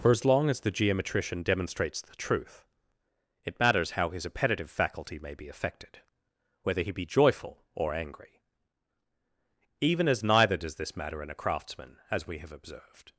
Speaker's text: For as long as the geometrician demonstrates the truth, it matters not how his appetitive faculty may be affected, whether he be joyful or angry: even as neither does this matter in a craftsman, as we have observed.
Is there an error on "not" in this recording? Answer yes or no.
yes